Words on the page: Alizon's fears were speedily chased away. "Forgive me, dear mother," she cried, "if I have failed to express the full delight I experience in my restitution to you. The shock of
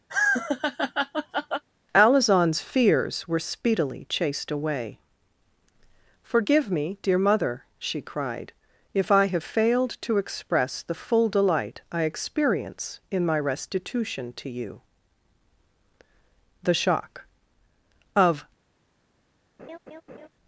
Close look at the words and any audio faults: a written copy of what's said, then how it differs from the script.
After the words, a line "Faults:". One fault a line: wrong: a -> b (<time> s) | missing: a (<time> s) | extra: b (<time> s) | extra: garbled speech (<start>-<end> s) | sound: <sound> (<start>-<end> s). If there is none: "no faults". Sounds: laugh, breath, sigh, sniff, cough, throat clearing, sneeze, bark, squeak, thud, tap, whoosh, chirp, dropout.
Alizon's fears were speedily chased away. "Forgive me, dear mother," she cried, "if I have failed to express the full delight I experience in my restitution to you. The shock of
Faults:
sound: laugh (0.1-1.6 s)
sound: laugh (19.6-20.3 s)